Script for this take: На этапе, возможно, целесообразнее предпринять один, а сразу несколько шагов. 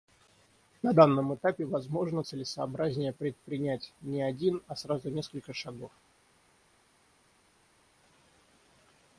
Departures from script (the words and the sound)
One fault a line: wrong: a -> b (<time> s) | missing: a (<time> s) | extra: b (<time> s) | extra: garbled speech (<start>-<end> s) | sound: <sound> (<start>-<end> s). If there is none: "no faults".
extra: данном (0.9 s)
extra: не (4.0 s)